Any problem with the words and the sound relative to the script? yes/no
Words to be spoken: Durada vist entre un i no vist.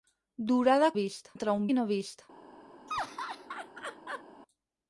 yes